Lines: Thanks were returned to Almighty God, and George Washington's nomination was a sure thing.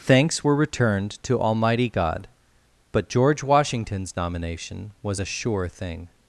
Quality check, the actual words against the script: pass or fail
fail